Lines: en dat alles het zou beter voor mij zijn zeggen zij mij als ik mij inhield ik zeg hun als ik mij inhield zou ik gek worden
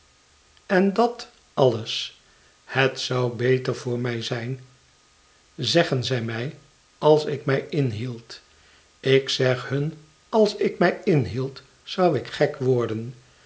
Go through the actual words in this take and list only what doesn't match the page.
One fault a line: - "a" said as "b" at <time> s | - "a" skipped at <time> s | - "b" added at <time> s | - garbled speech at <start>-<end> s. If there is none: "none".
none